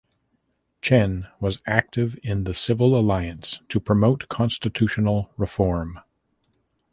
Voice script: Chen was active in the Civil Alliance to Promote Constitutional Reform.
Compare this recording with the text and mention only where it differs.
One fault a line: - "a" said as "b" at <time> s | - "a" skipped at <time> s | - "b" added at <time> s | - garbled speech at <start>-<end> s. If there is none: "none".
none